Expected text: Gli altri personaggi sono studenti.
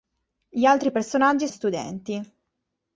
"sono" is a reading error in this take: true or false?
true